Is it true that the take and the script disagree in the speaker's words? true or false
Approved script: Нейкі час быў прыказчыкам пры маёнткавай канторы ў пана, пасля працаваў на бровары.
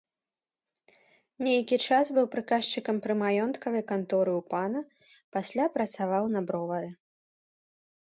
false